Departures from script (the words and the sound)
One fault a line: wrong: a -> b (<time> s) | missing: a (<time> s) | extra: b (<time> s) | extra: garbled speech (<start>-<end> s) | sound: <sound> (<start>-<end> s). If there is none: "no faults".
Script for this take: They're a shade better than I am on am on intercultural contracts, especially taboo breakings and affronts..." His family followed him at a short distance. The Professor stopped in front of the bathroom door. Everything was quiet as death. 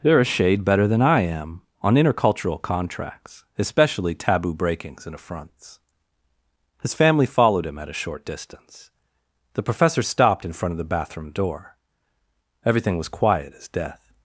missing: am on (1.9 s)